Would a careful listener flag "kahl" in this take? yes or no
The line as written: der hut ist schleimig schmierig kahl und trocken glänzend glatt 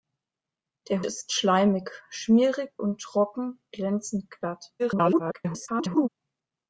yes